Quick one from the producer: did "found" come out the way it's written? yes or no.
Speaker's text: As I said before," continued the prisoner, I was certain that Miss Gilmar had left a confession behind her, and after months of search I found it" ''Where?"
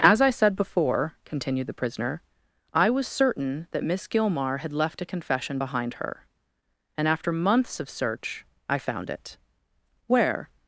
yes